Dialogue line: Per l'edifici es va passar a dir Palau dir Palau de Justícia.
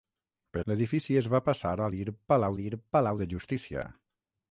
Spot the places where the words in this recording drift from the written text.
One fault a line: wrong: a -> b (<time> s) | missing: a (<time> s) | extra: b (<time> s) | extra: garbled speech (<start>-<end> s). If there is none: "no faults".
no faults